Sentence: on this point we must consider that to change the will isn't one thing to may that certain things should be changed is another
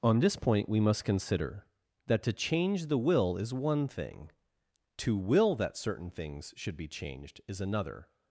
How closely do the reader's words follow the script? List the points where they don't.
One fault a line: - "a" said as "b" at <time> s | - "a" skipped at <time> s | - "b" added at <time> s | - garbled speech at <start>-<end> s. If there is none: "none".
- "isn't" said as "is" at 3.4 s
- "may" said as "will" at 5.2 s